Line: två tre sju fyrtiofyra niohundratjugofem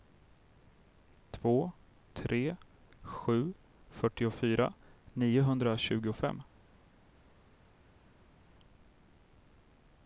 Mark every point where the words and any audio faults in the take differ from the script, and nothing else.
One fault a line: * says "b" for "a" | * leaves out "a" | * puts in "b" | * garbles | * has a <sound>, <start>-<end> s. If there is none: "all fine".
all fine